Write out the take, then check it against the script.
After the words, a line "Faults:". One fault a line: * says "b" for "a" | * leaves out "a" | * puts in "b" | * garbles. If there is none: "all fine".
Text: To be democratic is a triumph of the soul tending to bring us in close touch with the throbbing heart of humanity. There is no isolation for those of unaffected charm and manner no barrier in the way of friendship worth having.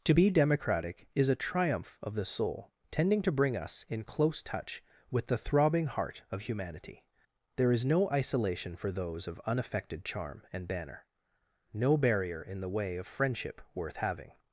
To be democratic is a triumph of the soul tending to bring us in close touch with the throbbing heart of humanity. There is no isolation for those of unaffected charm and banner no barrier in the way of friendship worth having.
Faults:
* says "banner" for "manner"